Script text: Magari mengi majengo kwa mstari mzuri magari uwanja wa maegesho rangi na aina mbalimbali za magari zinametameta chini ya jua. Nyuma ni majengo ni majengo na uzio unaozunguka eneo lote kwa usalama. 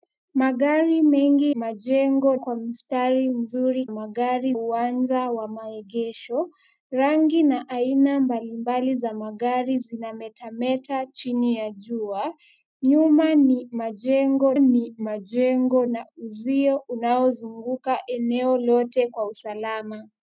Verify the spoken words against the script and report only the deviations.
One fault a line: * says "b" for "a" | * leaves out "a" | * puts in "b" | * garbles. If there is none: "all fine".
all fine